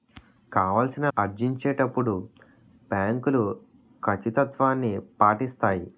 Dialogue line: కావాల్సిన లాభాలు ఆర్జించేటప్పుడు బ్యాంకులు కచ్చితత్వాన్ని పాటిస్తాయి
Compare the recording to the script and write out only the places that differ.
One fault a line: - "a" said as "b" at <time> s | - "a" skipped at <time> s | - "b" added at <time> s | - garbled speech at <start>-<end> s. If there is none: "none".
- "లాభాలు" skipped at 1.1 s